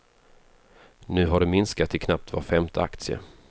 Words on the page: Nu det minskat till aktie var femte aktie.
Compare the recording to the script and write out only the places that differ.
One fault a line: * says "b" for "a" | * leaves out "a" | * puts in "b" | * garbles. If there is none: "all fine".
* puts in "har"
* says "knappt" for "aktie"